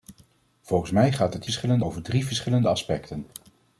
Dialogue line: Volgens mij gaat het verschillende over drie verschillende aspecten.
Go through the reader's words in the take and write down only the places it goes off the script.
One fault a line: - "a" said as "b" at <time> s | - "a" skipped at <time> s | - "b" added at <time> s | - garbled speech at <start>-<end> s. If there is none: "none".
none